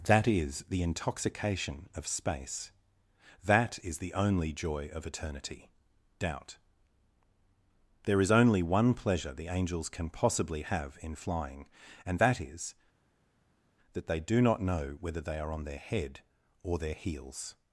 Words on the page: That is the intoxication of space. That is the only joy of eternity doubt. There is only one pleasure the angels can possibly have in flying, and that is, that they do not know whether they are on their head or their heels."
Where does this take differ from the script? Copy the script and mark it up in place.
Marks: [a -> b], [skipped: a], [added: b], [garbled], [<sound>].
That is the intoxication of space. That is the only joy of eternity doubt. There is only one pleasure the angels can possibly have in flying, and that is, that they do not know whether they are on their head or their heels."